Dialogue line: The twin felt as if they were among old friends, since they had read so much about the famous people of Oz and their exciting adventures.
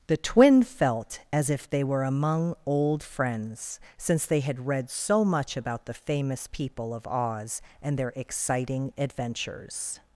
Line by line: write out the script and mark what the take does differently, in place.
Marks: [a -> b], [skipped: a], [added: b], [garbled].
The twin felt as if they were among old friends, since they had read so much about the famous people of Oz and their exciting adventures.